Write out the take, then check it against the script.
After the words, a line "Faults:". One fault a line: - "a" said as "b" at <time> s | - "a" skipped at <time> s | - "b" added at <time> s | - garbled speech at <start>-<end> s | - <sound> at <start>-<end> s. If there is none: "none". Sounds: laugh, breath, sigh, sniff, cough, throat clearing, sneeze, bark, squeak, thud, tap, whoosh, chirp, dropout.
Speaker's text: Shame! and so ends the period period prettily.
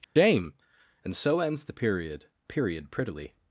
Shame! and so ends the period period prettily.
Faults:
- dropout at 0.0-0.2 s